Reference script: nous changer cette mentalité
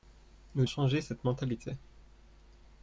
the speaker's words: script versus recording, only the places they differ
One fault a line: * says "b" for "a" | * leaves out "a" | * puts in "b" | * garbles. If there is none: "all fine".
all fine